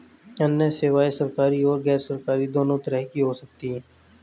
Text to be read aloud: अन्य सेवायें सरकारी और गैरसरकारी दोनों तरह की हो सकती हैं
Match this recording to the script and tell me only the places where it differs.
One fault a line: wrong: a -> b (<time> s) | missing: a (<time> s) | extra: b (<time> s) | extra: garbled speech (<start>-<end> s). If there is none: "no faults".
no faults